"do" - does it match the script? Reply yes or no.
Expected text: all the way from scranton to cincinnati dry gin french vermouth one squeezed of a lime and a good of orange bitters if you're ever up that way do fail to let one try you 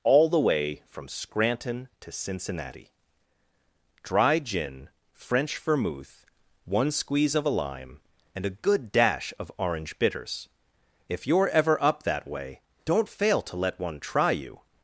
no